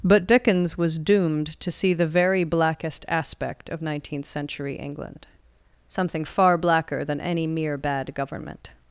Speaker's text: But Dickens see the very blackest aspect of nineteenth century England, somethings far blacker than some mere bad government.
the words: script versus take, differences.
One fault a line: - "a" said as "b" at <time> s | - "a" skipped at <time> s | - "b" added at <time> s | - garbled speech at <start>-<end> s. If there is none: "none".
- "was doomed to" added at 0.8 s
- "somethings" said as "something" at 5.9 s
- "some" said as "any" at 7.2 s